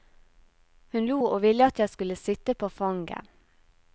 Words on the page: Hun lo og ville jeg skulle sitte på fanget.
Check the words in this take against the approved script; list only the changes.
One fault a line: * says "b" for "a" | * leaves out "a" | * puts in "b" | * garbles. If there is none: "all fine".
* puts in "at"